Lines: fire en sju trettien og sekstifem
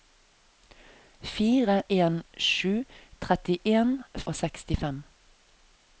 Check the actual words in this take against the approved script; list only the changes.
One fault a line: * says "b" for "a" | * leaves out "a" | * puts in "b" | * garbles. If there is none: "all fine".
all fine